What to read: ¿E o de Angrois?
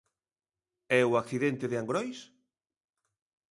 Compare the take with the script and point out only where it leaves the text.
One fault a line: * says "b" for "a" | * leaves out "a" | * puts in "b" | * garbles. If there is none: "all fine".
* puts in "accidente"